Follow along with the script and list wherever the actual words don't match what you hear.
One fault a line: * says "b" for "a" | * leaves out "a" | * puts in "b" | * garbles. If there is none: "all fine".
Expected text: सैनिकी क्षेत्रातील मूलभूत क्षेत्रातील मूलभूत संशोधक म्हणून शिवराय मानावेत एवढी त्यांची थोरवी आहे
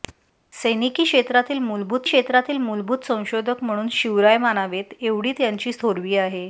all fine